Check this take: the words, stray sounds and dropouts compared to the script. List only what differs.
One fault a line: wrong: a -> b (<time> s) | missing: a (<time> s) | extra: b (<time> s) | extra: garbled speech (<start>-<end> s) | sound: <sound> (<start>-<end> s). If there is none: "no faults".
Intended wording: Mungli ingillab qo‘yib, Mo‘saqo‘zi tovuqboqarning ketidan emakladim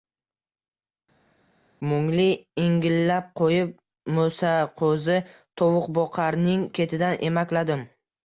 no faults